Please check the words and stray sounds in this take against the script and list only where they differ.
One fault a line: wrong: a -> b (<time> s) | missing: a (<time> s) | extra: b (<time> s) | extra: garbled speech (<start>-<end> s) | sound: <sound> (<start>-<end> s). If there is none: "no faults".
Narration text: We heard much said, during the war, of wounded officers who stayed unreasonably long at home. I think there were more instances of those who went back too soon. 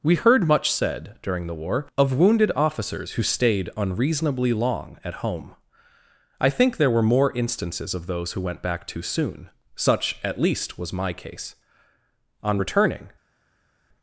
extra: Such at least was my case On returning (9.7 s)